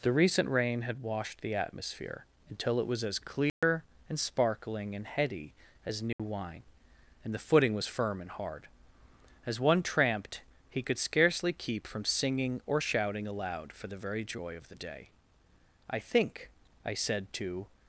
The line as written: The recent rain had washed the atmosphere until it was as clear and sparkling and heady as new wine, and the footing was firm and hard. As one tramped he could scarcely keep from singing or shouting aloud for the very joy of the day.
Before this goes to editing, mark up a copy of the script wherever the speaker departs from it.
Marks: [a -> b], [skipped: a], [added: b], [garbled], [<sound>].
The recent rain had washed the atmosphere until it was as clear [dropout] and sparkling and heady as new [dropout] wine, and the footing was firm and hard. As one tramped he could scarcely keep from singing or shouting aloud for the very joy of the day. [added: I think I said to]